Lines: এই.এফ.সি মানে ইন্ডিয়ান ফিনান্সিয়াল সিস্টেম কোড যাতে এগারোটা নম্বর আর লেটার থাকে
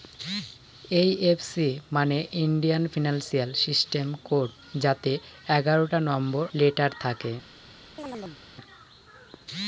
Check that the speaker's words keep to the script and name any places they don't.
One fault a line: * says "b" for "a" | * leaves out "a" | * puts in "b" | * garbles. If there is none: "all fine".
* leaves out "আর"